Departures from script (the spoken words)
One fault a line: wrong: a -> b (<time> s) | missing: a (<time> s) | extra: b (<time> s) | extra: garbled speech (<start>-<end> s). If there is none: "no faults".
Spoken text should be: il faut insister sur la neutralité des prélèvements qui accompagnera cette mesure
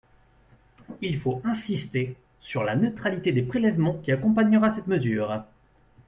no faults